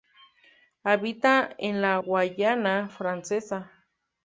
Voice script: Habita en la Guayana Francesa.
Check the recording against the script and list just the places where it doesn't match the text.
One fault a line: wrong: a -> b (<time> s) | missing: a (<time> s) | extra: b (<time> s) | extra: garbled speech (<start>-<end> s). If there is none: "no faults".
no faults